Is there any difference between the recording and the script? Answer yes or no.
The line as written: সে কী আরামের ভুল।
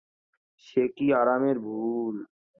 no